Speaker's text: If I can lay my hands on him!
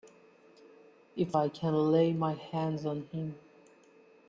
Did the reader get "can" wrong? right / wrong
right